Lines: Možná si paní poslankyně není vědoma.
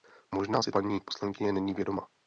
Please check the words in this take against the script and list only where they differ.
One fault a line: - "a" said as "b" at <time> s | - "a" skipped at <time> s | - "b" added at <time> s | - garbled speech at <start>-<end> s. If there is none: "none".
none